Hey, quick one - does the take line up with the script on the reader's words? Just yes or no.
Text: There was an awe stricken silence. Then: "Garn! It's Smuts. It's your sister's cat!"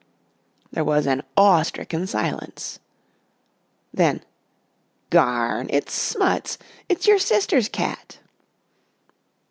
yes